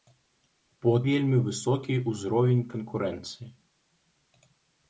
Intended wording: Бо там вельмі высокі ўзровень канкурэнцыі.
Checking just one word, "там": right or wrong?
wrong